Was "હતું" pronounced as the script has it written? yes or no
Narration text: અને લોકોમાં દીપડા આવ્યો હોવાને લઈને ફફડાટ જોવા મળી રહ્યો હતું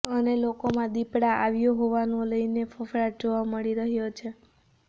no